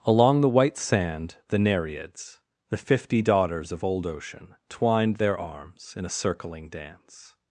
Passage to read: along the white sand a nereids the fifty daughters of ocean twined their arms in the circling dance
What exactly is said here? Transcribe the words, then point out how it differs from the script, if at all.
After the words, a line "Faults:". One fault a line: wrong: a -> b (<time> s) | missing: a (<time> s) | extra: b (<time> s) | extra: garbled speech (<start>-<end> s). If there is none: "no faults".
along the white sand the nereids the fifty daughters of old ocean twined their arms in a circling dance
Faults:
wrong: a -> the (1.5 s)
extra: old (3.8 s)
wrong: the -> a (6.0 s)